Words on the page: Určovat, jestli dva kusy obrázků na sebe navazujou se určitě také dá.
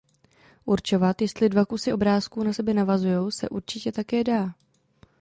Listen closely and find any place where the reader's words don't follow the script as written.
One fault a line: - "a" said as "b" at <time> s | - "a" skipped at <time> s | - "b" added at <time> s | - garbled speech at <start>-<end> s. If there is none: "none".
none